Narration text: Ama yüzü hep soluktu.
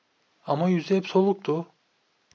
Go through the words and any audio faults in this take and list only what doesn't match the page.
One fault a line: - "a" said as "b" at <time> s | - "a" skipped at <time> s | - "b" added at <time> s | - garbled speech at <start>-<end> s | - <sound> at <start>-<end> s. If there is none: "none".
none